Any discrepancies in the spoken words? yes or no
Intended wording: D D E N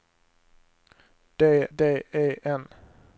no